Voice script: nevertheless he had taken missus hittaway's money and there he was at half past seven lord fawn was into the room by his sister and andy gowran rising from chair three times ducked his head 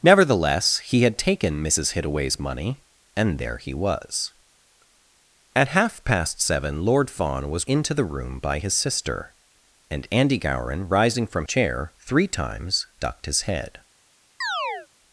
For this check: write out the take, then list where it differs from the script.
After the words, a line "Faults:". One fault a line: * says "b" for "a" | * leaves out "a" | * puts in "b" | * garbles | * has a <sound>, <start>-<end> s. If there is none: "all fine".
nevertheless he had taken missus hittaway's money and there he was at half past seven lord fawn was into the room by his sister and andy gowran rising from chair three times ducked his head
Faults:
* has a chirp, 14.4-14.9 s